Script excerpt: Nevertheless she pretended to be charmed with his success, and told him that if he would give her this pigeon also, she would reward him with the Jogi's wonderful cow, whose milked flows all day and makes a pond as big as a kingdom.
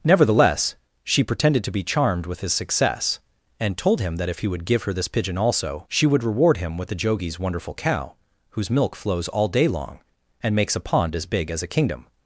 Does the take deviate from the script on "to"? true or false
false